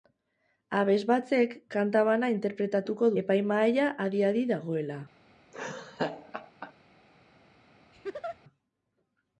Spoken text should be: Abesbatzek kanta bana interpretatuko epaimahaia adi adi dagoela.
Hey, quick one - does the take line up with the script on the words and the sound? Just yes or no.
no